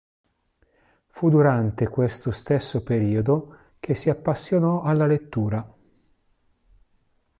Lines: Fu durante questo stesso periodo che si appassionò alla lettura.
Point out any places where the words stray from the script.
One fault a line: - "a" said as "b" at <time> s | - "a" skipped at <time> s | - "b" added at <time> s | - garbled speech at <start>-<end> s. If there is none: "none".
none